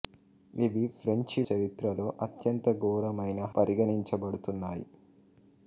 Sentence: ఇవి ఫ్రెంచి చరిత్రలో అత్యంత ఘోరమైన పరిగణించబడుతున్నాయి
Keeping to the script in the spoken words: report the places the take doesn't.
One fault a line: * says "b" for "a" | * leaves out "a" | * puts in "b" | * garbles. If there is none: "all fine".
all fine